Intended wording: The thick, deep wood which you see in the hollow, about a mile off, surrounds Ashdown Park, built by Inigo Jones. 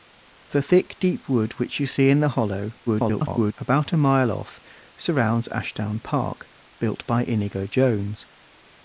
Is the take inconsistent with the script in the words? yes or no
yes